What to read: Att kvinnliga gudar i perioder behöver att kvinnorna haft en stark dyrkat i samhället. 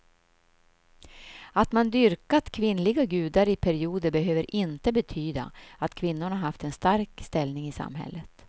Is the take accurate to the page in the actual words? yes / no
no